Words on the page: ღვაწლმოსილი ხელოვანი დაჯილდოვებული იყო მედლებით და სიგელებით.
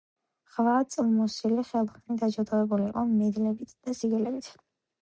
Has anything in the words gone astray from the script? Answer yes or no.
no